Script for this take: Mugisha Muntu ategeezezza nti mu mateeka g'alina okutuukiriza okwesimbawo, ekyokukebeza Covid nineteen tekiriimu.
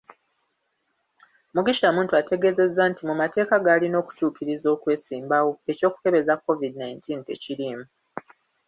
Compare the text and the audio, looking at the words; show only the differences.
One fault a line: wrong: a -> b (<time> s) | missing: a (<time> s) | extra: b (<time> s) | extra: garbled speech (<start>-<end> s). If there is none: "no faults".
no faults